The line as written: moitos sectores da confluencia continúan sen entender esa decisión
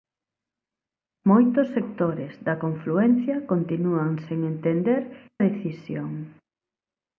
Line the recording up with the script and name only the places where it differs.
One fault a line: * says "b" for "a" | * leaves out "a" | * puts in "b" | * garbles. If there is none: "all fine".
* leaves out "esa"